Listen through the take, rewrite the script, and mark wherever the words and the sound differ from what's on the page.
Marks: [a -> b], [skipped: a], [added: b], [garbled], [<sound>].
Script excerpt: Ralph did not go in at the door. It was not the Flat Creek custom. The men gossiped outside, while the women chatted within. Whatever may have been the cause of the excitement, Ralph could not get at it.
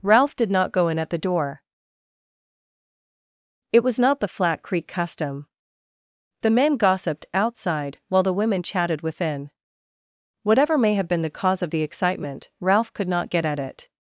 Ralph did not go in at the door. It was not the Flat Creek custom. The men gossiped outside, while the women chatted within. Whatever may have been the cause of the excitement, Ralph could not get at it.